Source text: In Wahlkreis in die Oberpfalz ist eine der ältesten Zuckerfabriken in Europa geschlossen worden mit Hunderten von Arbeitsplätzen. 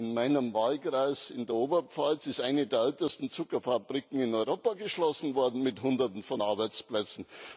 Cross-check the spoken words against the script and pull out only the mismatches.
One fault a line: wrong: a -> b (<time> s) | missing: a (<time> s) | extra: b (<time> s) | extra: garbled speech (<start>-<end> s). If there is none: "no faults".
extra: meinem (0.1 s)
wrong: die -> der (1.4 s)